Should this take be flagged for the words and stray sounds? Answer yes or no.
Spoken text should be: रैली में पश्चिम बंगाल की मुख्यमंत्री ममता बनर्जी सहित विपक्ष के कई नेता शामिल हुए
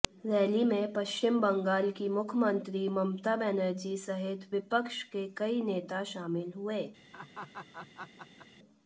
yes